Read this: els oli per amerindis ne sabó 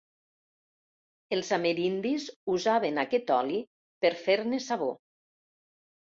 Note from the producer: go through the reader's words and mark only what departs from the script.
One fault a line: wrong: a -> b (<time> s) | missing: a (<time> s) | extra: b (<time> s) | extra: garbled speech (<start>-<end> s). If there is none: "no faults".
extra: amerindis usaven aquest (1.6 s)
wrong: amerindis -> fer (4.2 s)